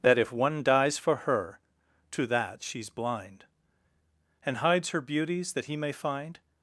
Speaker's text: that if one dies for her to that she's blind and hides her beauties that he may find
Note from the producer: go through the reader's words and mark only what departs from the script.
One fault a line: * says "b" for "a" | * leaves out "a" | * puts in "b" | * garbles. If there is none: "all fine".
all fine